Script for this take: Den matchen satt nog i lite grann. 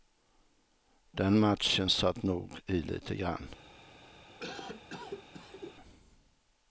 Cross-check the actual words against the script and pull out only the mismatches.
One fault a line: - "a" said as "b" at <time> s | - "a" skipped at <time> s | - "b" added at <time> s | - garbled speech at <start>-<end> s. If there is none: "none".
none